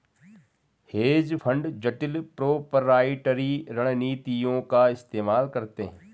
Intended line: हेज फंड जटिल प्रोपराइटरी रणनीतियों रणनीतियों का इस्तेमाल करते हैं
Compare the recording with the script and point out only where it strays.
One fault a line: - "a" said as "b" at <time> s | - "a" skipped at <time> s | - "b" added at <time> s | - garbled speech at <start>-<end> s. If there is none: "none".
- "रणनीतियों" skipped at 4.6 s